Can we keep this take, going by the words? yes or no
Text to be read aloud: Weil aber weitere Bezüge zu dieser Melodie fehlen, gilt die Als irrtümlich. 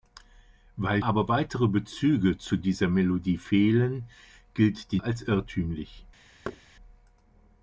yes